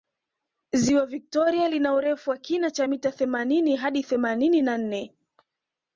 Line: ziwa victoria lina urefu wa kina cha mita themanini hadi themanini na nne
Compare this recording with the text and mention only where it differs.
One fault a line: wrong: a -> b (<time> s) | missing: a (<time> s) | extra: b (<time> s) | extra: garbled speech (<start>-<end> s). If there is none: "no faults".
no faults